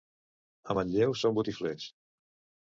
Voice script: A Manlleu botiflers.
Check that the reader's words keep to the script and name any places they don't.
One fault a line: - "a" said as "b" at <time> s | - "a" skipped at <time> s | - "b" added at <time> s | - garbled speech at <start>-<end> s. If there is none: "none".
- "són" added at 1.2 s